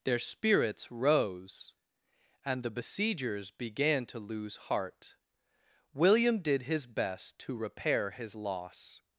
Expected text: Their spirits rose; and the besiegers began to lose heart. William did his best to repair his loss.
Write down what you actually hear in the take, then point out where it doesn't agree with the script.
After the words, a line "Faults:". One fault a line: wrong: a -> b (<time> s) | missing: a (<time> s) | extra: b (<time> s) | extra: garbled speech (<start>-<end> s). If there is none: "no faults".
Their spirits rose; and the besiegers began to lose heart. William did his best to repair his loss.
Faults:
no faults